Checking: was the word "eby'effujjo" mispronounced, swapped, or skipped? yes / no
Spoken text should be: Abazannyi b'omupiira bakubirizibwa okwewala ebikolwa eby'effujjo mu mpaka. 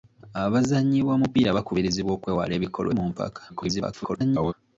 yes